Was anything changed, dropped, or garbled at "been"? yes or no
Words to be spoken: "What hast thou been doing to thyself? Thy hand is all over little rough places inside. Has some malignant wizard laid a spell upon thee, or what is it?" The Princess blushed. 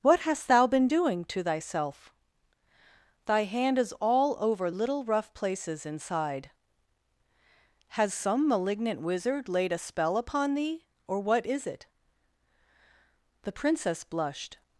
no